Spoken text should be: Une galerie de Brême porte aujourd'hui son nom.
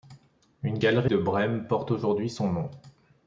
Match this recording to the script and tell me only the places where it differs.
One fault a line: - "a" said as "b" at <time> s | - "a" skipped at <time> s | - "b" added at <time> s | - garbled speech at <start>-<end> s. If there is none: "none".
none